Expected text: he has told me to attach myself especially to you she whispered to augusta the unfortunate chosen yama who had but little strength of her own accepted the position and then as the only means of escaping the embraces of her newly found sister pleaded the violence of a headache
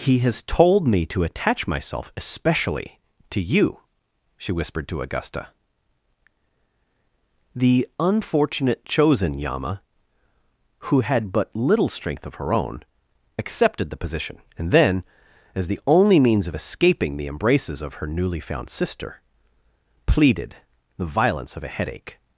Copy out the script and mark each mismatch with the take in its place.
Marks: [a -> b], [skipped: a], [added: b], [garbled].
he has told me to attach myself especially to you she whispered to augusta the unfortunate chosen yama who had but little strength of her own accepted the position and then as the only means of escaping the embraces of her newly found sister pleaded the violence of a headache